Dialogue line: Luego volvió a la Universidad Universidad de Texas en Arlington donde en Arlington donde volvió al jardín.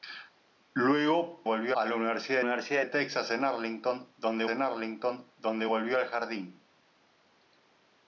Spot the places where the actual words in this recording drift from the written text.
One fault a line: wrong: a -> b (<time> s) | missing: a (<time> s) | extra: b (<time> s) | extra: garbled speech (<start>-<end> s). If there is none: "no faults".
no faults